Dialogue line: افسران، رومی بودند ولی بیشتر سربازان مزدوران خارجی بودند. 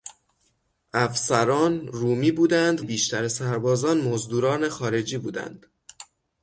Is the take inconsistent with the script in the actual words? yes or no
yes